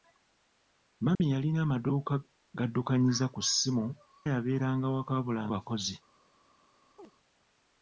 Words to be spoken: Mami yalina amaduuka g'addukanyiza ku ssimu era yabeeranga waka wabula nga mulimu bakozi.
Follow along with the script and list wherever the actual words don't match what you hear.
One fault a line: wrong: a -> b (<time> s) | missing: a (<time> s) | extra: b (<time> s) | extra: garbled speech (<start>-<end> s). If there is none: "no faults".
missing: era (3.9 s)
missing: nga mulimu (5.4 s)